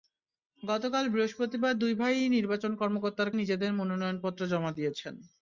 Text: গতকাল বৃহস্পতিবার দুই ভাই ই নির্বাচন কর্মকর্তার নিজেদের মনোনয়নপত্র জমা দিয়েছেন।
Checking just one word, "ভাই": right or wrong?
right